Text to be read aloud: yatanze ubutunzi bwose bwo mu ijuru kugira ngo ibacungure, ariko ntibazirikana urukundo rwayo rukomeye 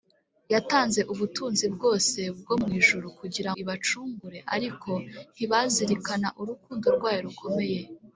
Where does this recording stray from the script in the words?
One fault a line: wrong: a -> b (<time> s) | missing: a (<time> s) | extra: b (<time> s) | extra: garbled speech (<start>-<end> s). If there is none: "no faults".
missing: ngo (3.5 s)